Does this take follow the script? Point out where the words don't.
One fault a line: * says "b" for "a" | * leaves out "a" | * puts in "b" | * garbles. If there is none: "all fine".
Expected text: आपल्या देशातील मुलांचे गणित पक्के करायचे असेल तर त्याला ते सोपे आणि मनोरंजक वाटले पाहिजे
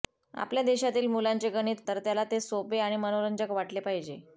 * leaves out "पक्के करायचे असेल"